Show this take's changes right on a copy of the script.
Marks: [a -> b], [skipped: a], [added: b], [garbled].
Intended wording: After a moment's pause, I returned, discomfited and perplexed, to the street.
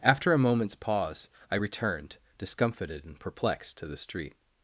After a moment's pause, I returned, discomfited and perplexed, to the street.